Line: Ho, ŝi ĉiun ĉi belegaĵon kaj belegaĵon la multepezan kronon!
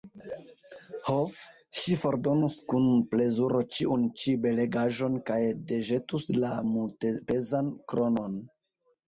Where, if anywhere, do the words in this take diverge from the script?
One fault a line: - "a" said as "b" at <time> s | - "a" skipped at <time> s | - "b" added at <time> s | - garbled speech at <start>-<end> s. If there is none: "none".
- "fordonus kun plezuro" added at 2.0 s
- "belegaĵon" said as "deĵetus" at 5.8 s